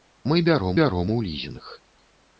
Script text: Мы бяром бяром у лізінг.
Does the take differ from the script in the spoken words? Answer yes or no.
no